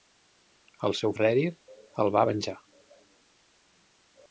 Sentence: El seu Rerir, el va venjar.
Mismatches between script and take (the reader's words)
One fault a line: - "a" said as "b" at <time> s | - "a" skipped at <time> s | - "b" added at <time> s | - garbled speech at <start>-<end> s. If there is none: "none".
none